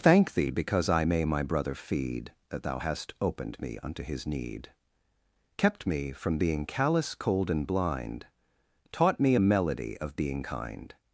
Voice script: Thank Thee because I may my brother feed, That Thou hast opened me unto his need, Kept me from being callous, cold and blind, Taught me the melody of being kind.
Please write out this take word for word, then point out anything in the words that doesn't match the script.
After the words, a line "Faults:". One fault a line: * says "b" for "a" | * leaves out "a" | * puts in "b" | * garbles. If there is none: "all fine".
Thank Thee because I may my brother feed, That Thou hast opened me unto his need, Kept me from being callous, cold and blind, Taught me a melody of being kind.
Faults:
* says "a" for "the"